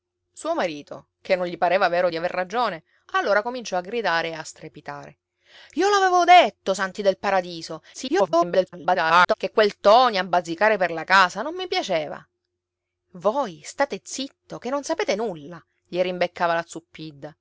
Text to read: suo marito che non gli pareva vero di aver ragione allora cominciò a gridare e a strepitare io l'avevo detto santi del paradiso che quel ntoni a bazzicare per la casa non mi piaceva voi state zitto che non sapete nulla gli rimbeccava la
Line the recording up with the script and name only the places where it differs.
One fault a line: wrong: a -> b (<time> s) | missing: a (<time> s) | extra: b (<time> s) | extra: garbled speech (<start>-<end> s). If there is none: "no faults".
extra: garbled speech (7.9-9.3 s)